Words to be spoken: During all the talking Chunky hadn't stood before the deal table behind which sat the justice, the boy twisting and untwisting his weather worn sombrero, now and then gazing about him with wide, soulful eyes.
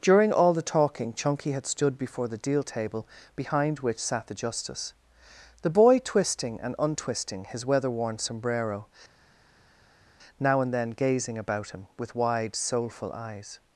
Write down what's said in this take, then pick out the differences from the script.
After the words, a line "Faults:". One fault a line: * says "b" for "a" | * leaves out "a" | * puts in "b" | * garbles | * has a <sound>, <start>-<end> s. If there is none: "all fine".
During all the talking Chunky had stood before the deal table behind which sat the justice, the boy twisting and untwisting his weather worn sombrero, now and then gazing about him with wide, soulful eyes.
Faults:
* says "had" for "hadn't"